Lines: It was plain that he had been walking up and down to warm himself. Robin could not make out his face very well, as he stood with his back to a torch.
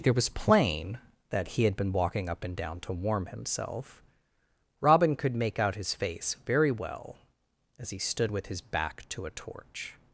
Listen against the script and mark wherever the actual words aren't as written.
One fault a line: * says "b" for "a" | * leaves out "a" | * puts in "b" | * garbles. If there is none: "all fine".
* leaves out "not"